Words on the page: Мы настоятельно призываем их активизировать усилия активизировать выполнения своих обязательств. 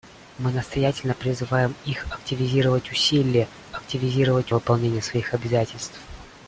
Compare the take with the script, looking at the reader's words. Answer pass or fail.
pass